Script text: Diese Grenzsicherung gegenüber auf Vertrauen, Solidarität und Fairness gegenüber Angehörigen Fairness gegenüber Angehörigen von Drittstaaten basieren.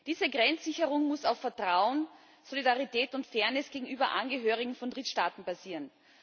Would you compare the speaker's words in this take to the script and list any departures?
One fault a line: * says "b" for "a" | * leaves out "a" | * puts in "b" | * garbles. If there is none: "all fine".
* says "muss" for "gegenüber"
* leaves out "Fairness gegenüber Angehörigen"